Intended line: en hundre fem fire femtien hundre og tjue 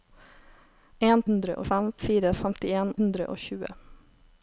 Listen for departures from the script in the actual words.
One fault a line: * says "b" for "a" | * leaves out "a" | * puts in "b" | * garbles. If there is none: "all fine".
all fine